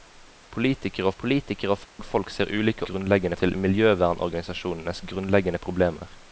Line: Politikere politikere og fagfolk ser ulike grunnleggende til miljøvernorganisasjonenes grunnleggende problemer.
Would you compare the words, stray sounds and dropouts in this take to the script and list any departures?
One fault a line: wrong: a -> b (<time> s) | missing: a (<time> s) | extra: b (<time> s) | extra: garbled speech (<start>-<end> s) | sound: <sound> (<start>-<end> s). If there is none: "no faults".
sound: dropout (1.8-2.0 s)